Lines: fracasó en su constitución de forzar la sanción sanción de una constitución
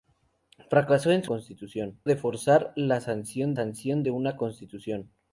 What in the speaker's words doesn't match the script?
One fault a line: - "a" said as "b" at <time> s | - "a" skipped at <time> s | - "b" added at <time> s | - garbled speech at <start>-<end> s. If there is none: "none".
none